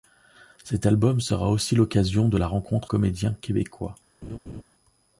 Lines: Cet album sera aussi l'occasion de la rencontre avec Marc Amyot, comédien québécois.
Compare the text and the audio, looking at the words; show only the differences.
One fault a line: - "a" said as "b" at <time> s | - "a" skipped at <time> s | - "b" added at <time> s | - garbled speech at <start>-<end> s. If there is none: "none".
- "avec Marc Amyot" skipped at 2.9 s